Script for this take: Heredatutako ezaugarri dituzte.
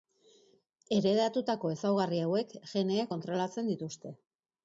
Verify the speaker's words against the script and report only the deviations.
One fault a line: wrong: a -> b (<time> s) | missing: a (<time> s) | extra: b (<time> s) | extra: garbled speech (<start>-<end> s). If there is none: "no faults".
extra: hauek geneek kontrolatzen (2.3 s)